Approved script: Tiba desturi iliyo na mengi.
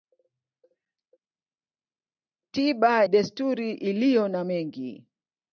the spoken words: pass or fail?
pass